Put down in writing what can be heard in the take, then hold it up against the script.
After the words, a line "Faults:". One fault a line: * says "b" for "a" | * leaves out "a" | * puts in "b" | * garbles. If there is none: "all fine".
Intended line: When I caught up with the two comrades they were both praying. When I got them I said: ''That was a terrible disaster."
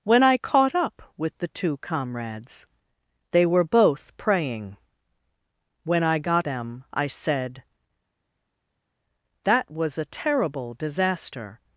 When I caught up with the two comrades they were both praying. When I got them I said: ''That was a terrible disaster."
Faults:
all fine